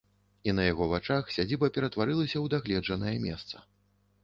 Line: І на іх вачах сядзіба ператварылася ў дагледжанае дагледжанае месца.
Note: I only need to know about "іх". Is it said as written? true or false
false